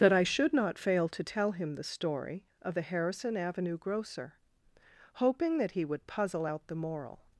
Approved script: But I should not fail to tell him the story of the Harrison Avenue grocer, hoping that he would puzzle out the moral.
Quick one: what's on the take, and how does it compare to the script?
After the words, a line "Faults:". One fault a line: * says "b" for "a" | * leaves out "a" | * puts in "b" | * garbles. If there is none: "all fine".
That I should not fail to tell him the story of the Harrison Avenue grocer, hoping that he would puzzle out the moral.
Faults:
* says "That" for "But"